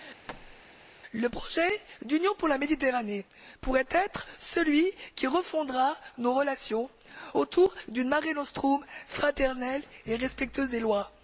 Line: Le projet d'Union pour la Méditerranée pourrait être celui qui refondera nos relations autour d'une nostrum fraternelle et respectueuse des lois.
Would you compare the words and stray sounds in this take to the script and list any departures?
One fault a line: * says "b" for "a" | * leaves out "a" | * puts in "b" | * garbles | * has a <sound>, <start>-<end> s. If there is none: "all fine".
* has a thud, 0.3-0.6 s
* puts in "mare"